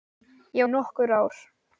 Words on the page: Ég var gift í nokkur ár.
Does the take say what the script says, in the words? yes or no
no